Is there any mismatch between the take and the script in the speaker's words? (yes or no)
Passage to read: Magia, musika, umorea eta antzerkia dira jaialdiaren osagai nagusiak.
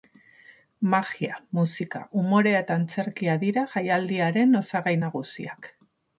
no